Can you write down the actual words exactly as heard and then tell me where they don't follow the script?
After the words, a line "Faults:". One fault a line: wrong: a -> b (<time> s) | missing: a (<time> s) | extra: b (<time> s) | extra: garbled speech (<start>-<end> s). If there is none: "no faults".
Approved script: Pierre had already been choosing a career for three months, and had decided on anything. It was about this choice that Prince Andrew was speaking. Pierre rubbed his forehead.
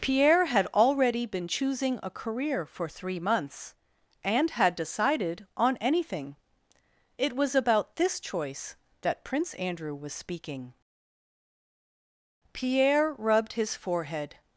Pierre had already been choosing a career for three months, and had decided on anything. It was about this choice that Prince Andrew was speaking. Pierre rubbed his forehead.
Faults:
no faults